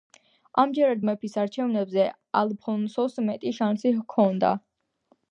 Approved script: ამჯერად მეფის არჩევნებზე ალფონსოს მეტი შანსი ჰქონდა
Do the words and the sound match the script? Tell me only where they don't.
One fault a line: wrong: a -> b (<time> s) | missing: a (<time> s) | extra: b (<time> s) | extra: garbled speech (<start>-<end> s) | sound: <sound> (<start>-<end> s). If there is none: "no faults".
no faults